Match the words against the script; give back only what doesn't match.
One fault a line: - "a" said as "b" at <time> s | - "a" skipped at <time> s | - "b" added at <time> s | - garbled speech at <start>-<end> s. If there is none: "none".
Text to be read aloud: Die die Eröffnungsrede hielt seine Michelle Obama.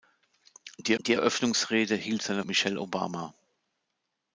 none